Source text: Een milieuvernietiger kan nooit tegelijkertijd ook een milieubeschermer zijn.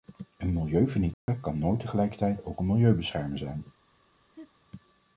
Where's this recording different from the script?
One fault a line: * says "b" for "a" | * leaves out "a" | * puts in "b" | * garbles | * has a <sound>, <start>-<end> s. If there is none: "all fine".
* has a dropout, 1.1-1.3 s
* has a laugh, 4.3-4.5 s